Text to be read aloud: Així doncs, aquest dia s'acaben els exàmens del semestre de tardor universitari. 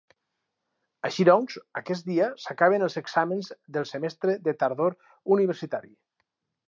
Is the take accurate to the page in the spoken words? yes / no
yes